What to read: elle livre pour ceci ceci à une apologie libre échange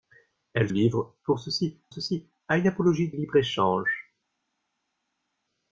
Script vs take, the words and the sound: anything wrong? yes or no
no